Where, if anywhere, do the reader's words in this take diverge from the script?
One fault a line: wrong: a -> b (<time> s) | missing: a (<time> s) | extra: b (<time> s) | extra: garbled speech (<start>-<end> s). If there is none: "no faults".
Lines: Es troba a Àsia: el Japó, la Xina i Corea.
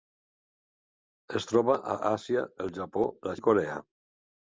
missing: Xina (3.4 s)